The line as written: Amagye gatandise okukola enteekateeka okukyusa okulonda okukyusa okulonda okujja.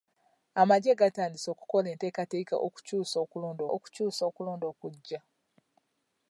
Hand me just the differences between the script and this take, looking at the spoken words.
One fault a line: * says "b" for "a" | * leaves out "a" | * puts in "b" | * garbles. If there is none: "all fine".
all fine